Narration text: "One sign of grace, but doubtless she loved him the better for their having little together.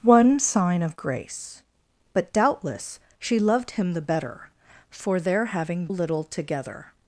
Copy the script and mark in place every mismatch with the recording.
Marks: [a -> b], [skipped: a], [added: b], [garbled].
"One sign of grace, but doubtless she loved him the better for their having little together.